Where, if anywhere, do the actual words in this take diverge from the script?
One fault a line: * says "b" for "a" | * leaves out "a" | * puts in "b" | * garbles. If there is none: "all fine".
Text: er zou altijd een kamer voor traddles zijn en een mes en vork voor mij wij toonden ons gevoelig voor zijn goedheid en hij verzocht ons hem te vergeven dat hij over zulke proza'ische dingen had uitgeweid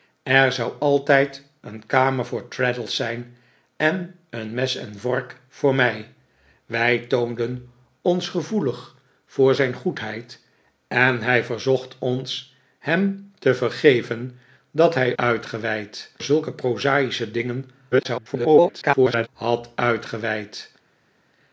* says "uitgeweid" for "over"
* garbles